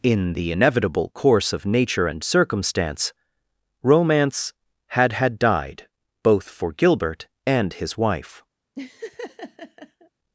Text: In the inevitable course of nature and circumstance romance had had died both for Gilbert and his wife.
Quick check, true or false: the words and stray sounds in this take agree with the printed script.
false